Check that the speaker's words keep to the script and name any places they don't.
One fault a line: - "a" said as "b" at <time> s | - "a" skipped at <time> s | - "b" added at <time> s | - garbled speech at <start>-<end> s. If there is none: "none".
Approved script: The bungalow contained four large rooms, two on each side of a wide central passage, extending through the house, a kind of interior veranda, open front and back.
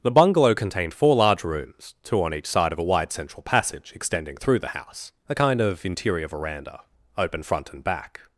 none